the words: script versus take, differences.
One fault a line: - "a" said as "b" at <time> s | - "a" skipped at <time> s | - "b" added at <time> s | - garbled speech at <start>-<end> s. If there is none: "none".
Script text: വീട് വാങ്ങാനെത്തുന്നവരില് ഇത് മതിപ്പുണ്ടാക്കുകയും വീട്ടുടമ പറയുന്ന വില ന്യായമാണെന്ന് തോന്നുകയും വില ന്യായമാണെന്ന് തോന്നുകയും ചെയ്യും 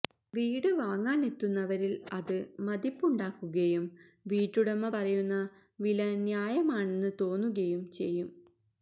- "ഇത്" said as "അത്" at 2.1 s
- "വില ന്യായമാണെന്ന് തോന്നുകയും" skipped at 7.9 s